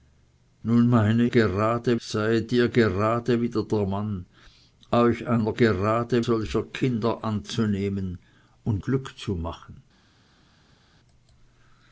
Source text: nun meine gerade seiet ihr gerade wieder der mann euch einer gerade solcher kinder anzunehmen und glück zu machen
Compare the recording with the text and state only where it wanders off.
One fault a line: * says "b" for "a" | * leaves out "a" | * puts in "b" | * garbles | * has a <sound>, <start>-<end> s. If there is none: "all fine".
all fine